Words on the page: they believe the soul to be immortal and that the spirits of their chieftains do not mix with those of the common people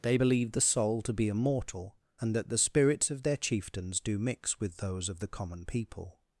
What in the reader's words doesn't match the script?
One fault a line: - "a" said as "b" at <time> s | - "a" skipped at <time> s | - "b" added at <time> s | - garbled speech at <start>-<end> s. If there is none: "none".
- "not" skipped at 4.2 s